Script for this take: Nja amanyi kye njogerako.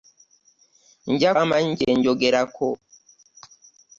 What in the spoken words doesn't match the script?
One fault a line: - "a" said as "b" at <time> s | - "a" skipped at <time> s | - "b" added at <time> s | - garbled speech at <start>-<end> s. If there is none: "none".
none